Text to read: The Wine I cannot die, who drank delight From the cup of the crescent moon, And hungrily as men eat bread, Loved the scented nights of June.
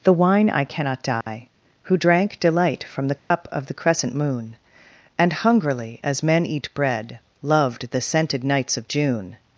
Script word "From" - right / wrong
right